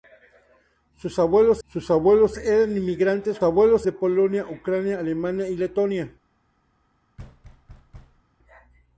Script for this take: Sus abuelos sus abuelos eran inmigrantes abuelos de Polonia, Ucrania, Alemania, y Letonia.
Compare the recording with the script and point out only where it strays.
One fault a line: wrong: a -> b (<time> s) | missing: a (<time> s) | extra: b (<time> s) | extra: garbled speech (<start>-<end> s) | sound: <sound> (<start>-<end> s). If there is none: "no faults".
sound: thud (7.2-8.2 s)